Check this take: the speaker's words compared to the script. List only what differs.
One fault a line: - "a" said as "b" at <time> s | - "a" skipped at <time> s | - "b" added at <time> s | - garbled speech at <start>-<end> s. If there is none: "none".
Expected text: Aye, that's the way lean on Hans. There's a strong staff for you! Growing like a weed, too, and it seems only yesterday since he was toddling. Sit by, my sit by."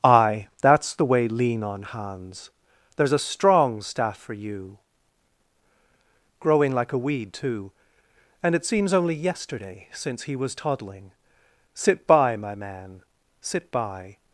- "man" added at 12.5 s